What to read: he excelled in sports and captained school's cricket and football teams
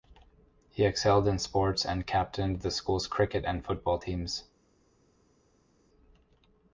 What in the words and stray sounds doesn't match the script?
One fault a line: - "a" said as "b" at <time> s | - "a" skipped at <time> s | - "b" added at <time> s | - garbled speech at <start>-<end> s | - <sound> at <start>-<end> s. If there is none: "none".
- "the" added at 2.6 s